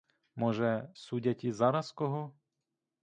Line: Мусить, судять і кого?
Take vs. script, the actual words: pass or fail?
fail